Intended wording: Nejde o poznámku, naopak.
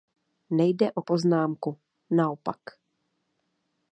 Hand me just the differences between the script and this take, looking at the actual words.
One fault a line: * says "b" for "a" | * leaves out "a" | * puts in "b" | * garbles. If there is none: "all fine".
all fine